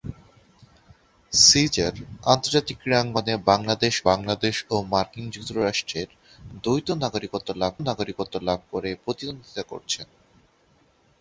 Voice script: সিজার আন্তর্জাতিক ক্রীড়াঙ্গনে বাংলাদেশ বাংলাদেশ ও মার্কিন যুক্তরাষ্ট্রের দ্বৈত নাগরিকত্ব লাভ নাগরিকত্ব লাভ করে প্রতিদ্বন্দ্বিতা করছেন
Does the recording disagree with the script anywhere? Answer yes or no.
no